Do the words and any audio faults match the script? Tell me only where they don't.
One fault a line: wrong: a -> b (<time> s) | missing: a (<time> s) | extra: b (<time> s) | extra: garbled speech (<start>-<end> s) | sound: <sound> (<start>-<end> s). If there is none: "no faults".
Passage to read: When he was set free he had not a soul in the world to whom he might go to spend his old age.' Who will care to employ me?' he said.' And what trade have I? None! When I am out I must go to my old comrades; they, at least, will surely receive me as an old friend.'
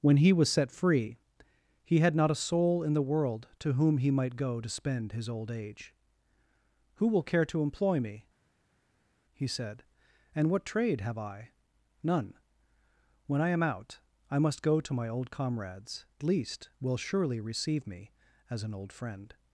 missing: they at (16.1 s)